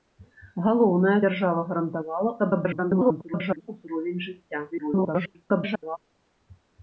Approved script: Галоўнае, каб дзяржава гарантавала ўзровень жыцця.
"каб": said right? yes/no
no